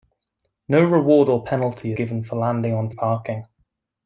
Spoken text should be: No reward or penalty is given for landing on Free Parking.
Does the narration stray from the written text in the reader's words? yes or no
yes